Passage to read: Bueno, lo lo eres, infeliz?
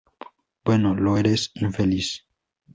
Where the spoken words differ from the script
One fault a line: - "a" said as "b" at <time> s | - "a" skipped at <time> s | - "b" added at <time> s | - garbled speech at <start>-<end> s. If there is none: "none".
- "lo" skipped at 1.2 s